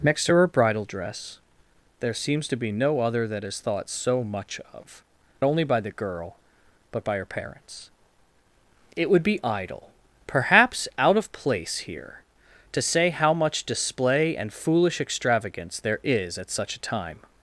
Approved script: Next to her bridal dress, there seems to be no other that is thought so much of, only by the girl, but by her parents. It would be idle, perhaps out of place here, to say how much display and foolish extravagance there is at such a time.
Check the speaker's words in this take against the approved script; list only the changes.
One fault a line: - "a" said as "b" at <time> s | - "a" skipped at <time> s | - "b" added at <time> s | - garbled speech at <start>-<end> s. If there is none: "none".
none